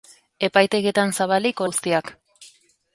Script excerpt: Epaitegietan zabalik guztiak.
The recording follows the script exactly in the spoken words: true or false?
true